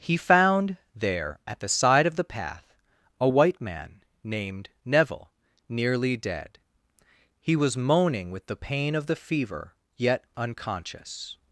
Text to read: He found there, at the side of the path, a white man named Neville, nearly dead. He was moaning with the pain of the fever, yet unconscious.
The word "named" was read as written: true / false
true